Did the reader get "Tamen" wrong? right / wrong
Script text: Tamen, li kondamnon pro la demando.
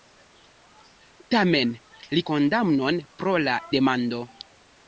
right